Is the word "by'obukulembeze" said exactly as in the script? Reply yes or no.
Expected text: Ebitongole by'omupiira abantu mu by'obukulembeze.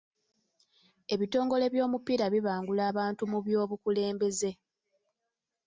yes